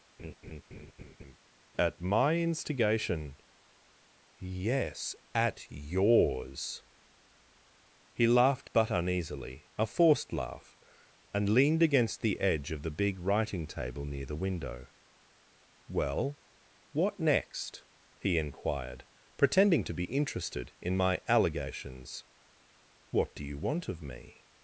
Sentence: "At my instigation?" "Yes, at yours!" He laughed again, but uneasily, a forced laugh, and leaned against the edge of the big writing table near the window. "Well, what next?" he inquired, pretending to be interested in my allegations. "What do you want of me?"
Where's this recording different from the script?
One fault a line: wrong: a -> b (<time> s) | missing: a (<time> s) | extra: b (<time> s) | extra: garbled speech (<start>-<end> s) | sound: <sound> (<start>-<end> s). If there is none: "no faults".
sound: laugh (0.2-1.4 s)
missing: again (8.7 s)